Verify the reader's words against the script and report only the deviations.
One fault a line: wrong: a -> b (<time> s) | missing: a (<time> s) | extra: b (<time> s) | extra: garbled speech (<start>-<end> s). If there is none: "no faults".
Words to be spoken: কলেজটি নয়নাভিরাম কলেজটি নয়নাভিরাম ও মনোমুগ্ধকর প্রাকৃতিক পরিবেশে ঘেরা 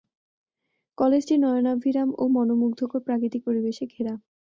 missing: কলেজটি নয়নাভিরাম (2.1 s)